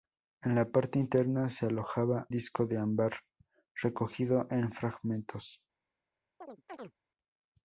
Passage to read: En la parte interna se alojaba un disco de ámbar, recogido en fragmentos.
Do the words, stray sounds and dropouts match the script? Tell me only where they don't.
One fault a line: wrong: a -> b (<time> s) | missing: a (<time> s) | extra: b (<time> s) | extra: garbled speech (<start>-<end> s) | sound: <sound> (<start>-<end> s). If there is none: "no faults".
missing: un (2.3 s)
sound: chirp (6.4-6.9 s)